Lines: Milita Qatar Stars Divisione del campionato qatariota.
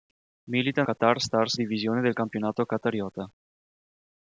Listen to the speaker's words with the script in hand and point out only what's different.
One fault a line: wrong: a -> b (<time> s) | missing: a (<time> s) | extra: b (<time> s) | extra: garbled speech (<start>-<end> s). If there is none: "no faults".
no faults